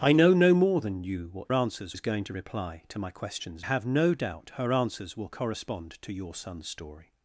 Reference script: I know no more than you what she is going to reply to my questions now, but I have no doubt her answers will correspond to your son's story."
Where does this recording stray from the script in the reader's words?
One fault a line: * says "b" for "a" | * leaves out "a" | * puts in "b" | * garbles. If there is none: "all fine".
* says "answers" for "she"
* leaves out "now but I"